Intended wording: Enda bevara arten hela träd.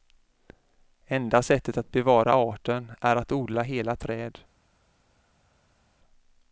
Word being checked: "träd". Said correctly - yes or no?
yes